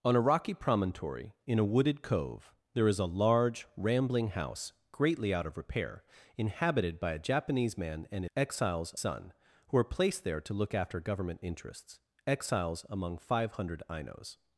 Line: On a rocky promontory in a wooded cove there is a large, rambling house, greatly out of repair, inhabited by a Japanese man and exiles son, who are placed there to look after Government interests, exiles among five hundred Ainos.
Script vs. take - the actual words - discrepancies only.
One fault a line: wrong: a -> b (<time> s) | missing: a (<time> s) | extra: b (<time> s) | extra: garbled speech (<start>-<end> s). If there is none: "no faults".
no faults